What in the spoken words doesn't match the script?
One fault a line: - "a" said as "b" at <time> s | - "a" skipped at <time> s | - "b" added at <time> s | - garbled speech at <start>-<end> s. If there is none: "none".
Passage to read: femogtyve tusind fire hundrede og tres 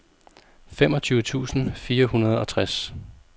none